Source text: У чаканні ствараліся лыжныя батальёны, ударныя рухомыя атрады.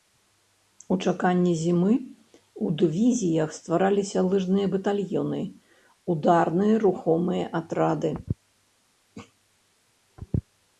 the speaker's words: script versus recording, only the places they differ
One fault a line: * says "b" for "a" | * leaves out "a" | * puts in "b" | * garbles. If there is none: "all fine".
* puts in "зімы ў дывізіях"